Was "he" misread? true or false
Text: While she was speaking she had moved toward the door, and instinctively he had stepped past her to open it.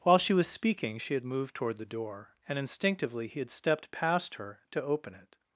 false